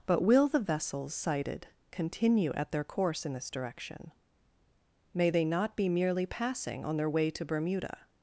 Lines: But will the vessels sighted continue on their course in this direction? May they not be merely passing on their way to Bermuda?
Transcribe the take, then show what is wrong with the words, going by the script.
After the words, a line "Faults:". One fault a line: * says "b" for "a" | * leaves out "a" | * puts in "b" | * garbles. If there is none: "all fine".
But will the vessels sighted continue at their course in this direction? May they not be merely passing on their way to Bermuda?
Faults:
* says "at" for "on"